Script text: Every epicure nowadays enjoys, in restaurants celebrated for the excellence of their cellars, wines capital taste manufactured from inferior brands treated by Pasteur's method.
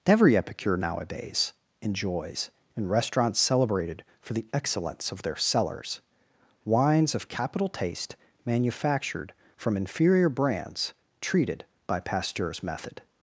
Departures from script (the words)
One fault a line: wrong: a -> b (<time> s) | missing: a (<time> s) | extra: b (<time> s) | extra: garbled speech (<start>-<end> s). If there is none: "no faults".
extra: of (7.1 s)